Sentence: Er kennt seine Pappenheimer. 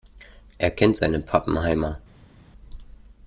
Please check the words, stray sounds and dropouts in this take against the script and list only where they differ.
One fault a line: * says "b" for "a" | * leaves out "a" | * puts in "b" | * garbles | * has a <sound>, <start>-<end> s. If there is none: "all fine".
all fine